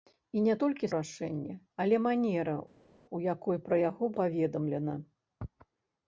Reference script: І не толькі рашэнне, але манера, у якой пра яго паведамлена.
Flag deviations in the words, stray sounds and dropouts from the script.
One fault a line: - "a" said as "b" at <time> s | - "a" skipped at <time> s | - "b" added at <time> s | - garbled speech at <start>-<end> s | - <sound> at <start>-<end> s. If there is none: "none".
none